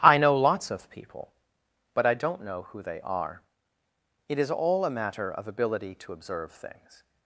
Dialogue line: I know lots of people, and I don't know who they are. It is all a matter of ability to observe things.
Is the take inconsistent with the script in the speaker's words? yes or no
yes